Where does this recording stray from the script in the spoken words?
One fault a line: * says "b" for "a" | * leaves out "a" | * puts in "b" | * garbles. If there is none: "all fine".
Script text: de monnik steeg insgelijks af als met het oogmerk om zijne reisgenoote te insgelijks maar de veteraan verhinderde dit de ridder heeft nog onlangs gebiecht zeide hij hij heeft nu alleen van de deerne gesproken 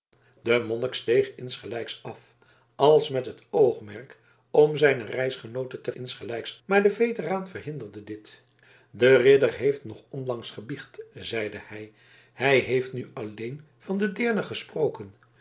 all fine